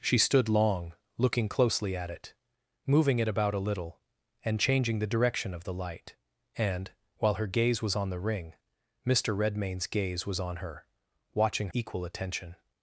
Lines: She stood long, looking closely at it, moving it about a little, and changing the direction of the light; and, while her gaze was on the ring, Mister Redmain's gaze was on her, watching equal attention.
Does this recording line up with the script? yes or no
yes